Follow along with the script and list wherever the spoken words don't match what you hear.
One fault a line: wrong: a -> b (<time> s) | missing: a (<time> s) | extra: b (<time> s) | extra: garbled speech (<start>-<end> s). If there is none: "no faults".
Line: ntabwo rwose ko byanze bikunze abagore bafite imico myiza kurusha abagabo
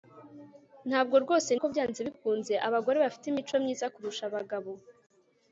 no faults